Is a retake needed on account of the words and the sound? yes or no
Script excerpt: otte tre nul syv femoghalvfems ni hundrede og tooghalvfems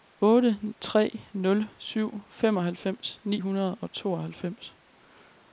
no